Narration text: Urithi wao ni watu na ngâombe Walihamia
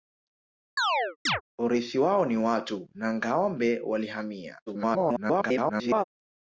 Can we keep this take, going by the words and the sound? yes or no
no